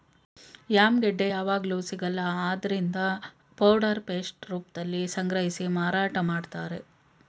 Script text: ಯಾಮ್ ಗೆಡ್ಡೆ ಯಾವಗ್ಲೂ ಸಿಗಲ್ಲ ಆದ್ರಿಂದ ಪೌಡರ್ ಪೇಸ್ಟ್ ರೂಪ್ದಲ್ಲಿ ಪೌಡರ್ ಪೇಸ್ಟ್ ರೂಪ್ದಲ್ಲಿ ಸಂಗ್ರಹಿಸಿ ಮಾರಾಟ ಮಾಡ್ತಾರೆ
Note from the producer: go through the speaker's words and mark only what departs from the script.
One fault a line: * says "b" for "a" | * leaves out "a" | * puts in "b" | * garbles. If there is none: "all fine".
* leaves out "ಪೌಡರ್ ಪೇಸ್ಟ್ ರೂಪ್ದಲ್ಲಿ"